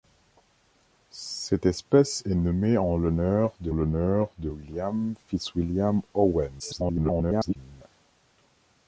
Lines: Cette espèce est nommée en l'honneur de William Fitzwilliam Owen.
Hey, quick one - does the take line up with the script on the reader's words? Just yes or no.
no